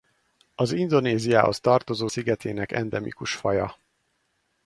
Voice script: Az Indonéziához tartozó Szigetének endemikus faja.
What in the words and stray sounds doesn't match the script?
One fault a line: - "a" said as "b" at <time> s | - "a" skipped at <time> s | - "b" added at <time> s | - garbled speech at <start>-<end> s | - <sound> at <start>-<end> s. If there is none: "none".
none